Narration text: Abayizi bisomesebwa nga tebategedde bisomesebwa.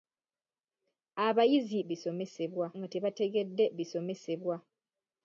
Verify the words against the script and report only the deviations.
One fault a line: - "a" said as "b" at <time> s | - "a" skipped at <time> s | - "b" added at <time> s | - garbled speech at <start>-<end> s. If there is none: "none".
none